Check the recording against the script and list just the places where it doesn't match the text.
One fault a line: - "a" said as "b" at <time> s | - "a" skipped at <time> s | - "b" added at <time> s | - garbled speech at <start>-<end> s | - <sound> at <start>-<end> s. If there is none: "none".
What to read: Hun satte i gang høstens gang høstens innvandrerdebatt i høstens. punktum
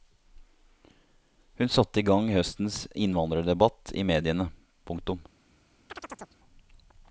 - "gang høstens" skipped at 2.8 s
- "høstens" said as "mediene" at 4.1 s
- chirp at 5.9-6.4 s